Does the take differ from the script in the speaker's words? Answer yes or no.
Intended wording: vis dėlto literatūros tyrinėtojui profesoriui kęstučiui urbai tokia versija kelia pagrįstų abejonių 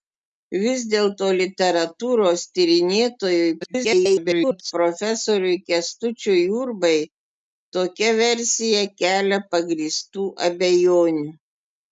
yes